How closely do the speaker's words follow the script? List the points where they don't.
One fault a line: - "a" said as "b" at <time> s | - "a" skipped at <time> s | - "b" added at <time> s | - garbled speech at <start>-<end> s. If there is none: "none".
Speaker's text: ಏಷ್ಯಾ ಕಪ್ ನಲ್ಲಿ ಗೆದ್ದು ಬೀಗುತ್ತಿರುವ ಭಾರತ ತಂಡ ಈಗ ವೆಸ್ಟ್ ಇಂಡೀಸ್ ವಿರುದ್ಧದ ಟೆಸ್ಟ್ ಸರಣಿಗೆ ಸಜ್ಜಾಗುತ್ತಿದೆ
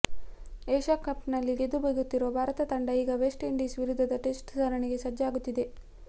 none